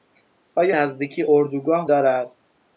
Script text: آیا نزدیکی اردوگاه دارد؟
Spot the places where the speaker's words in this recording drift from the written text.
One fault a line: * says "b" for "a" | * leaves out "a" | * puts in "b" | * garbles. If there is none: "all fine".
all fine